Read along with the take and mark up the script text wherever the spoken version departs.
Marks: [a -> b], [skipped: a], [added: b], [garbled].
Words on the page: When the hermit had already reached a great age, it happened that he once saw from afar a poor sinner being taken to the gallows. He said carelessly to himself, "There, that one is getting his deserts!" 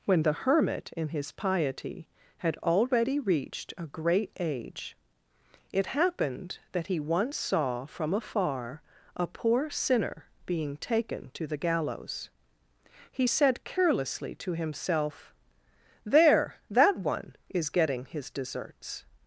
When the hermit [added: in his piety] had already reached a great age, it happened that he once saw from afar a poor sinner being taken to the gallows. He said carelessly to himself, "There, that one is getting his deserts!"